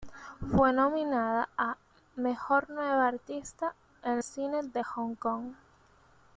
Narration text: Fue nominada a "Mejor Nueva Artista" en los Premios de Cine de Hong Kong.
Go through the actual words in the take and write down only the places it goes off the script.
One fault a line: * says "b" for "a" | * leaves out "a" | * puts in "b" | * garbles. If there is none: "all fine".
* leaves out "los Premios de"